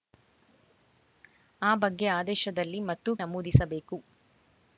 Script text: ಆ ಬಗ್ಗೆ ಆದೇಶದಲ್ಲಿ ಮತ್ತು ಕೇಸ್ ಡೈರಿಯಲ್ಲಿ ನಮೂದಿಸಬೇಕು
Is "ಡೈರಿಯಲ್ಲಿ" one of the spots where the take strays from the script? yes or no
yes